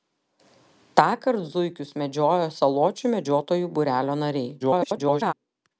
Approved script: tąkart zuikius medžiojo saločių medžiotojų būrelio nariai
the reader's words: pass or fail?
fail